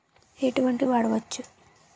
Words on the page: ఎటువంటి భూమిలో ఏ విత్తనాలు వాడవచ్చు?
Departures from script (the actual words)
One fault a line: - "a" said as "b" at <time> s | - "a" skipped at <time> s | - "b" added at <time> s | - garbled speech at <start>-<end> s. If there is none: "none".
- "భూమిలో ఏ విత్తనాలు" skipped at 0.8 s